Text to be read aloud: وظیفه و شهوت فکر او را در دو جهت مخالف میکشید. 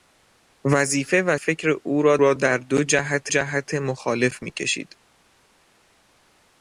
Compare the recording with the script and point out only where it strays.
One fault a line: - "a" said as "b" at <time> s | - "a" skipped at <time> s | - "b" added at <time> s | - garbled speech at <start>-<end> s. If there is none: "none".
- "شهوت" skipped at 1.4 s
- "را" added at 2.2 s
- "جهت" added at 3.3 s